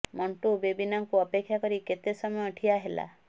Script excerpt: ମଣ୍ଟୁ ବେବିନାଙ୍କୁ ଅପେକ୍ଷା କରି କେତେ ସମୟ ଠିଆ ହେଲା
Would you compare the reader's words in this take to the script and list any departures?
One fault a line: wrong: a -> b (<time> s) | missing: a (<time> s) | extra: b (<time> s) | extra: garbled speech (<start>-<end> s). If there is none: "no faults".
no faults